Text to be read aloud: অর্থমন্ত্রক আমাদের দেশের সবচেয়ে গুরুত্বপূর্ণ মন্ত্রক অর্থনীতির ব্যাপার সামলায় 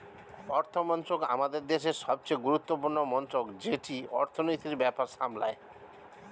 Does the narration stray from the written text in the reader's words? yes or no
yes